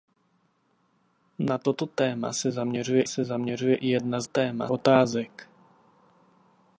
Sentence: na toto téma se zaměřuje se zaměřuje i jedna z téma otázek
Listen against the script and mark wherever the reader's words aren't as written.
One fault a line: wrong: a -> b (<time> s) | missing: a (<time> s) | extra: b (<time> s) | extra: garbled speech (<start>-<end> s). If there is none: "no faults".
no faults